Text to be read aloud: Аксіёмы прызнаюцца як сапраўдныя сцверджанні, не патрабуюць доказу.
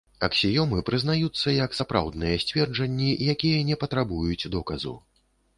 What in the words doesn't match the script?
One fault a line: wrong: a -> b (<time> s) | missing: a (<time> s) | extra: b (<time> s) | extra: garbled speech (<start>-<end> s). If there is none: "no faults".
extra: якія (3.4 s)